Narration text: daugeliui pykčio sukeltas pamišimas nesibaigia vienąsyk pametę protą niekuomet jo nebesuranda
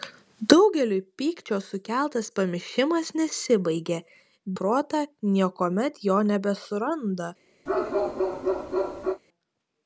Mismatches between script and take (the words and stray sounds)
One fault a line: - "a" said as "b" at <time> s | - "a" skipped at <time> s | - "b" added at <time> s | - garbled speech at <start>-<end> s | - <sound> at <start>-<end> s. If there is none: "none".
- "vienąsyk pametę" skipped at 4.0 s
- bark at 7.7-9.2 s